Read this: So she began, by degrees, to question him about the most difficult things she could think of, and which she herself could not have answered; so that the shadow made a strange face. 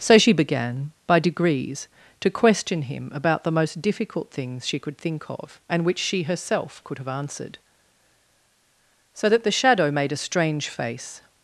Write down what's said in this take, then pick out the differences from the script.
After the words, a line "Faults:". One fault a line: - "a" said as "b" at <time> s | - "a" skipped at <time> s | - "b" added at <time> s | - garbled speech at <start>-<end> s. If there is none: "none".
So she began, by degrees, to question him about the most difficult things she could think of, and which she herself could have answered; so that the shadow made a strange face.
Faults:
- "not" skipped at 7.0 s